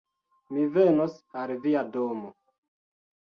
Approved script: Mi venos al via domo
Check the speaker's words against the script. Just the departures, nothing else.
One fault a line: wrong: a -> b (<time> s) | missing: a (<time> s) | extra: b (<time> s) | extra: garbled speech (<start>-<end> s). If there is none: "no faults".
no faults